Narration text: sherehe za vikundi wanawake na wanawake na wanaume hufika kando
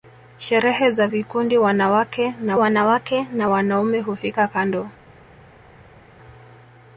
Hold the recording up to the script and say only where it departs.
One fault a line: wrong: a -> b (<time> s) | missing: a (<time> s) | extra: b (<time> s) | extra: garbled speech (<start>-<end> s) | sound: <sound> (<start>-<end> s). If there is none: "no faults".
no faults